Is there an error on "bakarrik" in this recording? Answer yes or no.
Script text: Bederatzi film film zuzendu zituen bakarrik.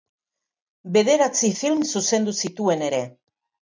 yes